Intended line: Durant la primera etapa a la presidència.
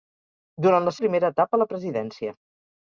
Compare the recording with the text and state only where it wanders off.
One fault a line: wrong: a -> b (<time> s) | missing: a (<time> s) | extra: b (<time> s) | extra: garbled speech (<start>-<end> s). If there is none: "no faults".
no faults